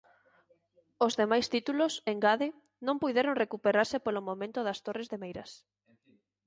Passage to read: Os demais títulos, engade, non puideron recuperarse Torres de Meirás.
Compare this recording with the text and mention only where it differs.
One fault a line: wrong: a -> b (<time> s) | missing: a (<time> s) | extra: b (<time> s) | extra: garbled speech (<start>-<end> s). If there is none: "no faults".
extra: polo momento das (4.0 s)